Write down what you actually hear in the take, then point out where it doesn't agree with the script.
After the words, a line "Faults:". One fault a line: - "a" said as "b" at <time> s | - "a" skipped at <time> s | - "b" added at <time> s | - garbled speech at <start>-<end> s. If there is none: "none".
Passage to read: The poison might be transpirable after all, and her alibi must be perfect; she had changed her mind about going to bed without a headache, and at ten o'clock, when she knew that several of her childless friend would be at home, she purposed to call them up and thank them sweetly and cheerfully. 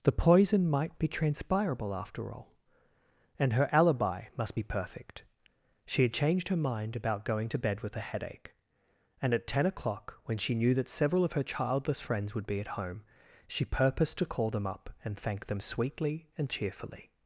The poison might be transpirable after all, and her alibi must be perfect; she had changed her mind about going to bed with a headache, and at ten o'clock, when she knew that several of her childless friends would be at home, she purposed to call them up and thank them sweetly and cheerfully.
Faults:
- "without" said as "with" at 7.8 s
- "friend" said as "friends" at 12.0 s